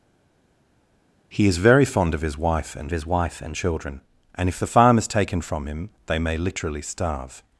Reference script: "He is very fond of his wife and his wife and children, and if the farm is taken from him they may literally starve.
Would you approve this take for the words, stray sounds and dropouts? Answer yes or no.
yes